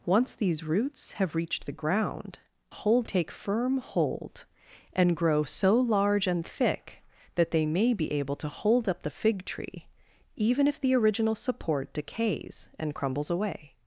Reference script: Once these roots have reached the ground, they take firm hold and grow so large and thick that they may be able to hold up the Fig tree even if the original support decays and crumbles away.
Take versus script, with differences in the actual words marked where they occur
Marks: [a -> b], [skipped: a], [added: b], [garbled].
Once these roots have reached the ground, [they -> hold] take firm hold and grow so large and thick that they may be able to hold up the Fig tree even if the original support decays and crumbles away.